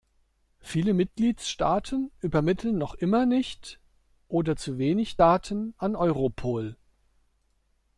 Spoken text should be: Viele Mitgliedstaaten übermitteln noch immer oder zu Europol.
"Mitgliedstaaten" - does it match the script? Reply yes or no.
yes